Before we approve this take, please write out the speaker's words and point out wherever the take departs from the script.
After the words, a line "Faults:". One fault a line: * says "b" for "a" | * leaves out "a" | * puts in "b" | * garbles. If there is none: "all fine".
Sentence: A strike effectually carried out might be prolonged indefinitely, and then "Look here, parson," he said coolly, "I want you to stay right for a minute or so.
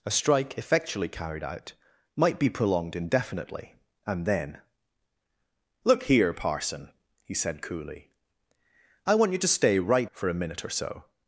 A strike effectually carried out might be prolonged indefinitely, and then "Look here, parson," he said coolly, "I want you to stay right for a minute or so.
Faults:
all fine